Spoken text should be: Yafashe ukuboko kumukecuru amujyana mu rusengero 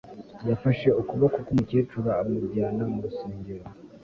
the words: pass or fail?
pass